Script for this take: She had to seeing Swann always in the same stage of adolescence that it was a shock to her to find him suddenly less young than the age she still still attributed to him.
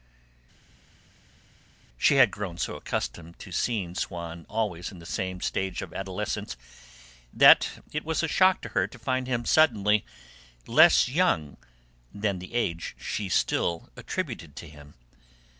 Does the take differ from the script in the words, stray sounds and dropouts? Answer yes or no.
yes